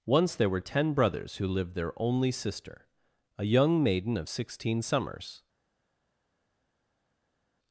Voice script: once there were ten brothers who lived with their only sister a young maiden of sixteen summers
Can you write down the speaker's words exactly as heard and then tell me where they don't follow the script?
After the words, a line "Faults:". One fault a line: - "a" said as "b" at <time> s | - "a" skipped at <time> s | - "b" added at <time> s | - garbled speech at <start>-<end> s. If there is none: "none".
once there were ten brothers who lived their only sister a young maiden of sixteen summers
Faults:
- "with" skipped at 1.7 s